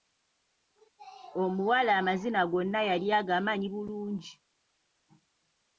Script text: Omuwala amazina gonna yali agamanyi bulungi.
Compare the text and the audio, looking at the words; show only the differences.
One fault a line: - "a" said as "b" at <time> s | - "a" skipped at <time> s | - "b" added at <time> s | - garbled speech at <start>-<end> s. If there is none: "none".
none